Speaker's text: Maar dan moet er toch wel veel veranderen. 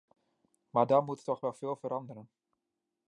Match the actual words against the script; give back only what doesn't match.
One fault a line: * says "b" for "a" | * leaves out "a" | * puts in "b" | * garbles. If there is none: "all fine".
all fine